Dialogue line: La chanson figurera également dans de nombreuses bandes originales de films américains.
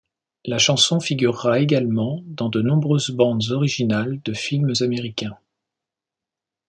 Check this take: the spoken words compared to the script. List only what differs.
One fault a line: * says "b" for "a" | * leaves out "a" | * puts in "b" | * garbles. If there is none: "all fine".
all fine